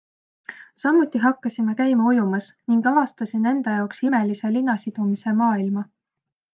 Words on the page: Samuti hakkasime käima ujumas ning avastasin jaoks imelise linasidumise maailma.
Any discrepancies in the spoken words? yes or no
yes